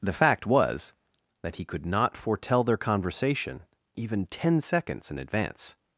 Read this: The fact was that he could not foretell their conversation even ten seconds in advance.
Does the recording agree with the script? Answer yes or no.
yes